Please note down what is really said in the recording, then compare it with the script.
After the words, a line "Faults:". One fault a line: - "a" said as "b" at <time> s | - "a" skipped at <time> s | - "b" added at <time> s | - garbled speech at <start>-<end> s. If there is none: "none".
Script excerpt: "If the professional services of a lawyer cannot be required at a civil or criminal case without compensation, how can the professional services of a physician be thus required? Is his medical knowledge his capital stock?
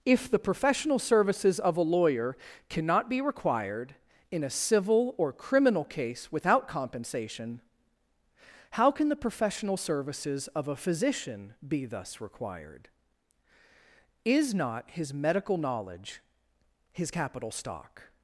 "If the professional services of a lawyer cannot be required in a civil or criminal case without compensation, how can the professional services of a physician be thus required? Is not his medical knowledge his capital stock?
Faults:
- "at" said as "in" at 4.3 s
- "not" added at 14.5 s